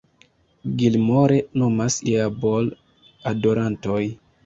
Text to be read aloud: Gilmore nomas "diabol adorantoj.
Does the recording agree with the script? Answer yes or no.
yes